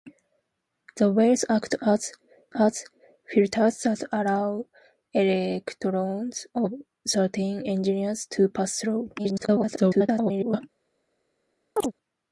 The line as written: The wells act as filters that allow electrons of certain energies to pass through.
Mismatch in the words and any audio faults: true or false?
true